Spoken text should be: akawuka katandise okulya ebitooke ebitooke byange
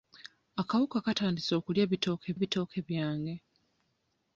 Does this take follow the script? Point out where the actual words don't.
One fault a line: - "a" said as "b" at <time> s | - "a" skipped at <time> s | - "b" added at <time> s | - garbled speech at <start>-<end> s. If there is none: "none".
none